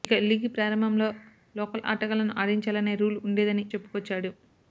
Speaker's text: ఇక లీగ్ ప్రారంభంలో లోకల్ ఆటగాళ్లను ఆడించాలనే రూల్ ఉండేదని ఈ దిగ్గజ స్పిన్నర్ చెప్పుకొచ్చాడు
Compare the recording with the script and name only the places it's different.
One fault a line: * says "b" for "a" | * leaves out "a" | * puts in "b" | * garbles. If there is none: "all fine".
* leaves out "ఈ దిగ్గజ స్పిన్నర్"